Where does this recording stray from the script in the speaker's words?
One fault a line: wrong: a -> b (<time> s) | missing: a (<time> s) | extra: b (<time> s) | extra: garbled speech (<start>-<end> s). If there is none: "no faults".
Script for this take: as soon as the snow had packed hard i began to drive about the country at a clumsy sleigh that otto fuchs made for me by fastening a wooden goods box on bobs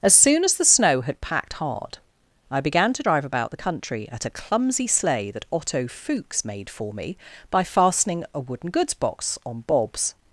no faults